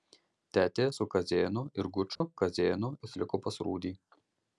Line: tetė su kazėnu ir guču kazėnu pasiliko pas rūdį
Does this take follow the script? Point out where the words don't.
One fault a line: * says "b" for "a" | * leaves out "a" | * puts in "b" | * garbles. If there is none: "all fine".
all fine